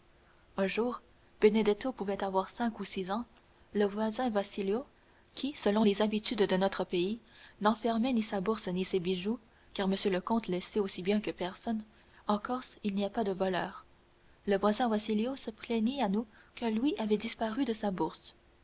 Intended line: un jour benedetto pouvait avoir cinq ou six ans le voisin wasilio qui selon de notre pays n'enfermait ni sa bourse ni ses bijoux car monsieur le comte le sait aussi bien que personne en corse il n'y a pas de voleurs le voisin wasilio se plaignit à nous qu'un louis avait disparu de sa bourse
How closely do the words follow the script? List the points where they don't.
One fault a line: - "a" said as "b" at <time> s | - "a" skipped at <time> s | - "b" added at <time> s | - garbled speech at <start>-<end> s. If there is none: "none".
- "les habitudes" added at 5.8 s